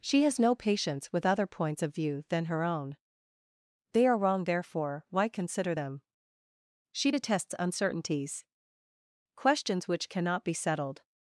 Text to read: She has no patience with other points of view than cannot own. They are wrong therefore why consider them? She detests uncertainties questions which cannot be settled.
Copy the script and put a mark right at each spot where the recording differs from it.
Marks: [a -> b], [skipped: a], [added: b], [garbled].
She has no patience with other points of view than [cannot -> her] own. They are wrong therefore why consider them? She detests uncertainties questions which cannot be settled.